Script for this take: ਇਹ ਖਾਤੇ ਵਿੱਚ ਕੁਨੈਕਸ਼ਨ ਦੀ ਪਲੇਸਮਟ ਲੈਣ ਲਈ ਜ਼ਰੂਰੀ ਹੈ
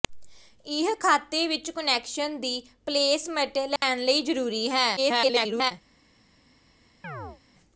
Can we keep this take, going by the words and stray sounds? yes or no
no